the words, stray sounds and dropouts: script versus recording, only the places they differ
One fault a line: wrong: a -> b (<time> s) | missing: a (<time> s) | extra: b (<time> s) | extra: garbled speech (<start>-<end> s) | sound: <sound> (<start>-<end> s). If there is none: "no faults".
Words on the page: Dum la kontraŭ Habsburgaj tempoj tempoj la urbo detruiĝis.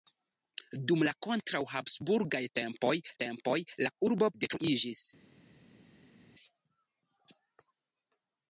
no faults